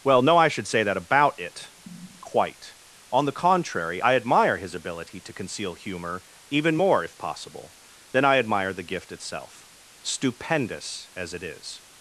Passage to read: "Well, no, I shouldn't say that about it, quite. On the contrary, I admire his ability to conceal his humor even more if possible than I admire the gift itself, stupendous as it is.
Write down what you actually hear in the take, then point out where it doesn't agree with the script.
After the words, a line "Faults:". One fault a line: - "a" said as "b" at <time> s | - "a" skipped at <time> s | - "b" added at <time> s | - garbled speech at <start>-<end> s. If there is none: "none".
"Well, no, I should say that about it, quite. On the contrary, I admire his ability to conceal humor even more if possible than I admire the gift itself, stupendous as it is.
Faults:
- "shouldn't" said as "should" at 0.5 s
- "his" skipped at 5.7 s